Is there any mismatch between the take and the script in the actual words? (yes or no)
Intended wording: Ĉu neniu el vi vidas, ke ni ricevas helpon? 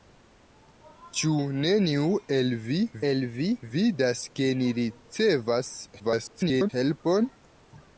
yes